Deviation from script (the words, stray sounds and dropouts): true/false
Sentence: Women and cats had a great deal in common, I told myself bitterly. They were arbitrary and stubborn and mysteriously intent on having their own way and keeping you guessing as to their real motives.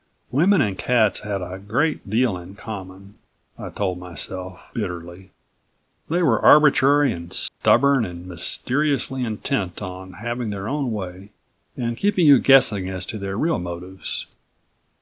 true